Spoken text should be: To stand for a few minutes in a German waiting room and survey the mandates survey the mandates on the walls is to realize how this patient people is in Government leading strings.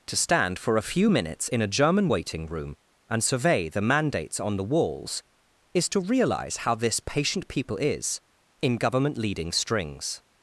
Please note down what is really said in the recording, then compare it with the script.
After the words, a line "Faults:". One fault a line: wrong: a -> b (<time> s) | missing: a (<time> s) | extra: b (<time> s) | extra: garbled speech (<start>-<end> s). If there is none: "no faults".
To stand for a few minutes in a German waiting room and survey the mandates on the walls is to realize how this patient people is in Government leading strings.
Faults:
missing: survey the mandates (4.4 s)